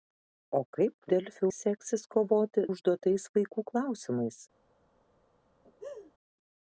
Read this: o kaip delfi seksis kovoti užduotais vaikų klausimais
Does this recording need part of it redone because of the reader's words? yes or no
no